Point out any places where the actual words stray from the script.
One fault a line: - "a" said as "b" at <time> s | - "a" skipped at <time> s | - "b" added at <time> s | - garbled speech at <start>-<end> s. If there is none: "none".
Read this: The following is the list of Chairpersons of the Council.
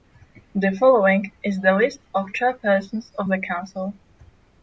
none